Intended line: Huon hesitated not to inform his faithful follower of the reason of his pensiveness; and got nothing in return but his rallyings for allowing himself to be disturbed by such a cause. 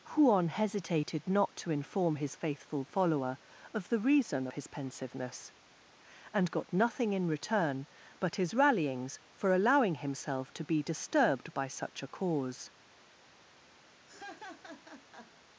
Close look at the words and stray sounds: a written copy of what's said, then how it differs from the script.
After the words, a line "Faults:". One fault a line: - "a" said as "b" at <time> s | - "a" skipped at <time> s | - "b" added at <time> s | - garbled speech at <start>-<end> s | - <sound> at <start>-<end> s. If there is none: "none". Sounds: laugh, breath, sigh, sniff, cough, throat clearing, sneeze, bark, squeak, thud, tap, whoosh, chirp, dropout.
Huon hesitated not to inform his faithful follower of the reason his pensiveness; and got nothing in return but his rallyings for allowing himself to be disturbed by such a cause.
Faults:
- "of" skipped at 4.5 s
- laugh at 14.1-15.3 s